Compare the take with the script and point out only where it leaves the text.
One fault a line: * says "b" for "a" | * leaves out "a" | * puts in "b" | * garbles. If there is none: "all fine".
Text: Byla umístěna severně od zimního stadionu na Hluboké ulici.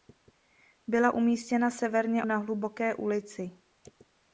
* leaves out "od zimního stadionu"